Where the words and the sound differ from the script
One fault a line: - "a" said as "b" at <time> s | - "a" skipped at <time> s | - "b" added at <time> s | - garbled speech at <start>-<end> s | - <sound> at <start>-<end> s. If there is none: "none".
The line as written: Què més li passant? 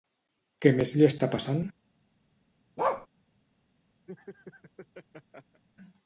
- "està" added at 1.1 s
- bark at 2.8-3.1 s
- laugh at 4.1-5.6 s